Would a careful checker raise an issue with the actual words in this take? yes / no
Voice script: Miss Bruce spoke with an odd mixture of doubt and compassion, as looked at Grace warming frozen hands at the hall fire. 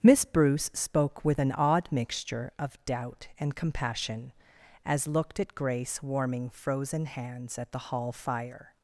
no